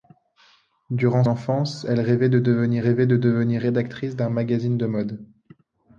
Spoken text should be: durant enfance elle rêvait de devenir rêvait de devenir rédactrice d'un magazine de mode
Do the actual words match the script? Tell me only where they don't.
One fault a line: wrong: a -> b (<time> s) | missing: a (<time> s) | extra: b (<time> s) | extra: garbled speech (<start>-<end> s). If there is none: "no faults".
no faults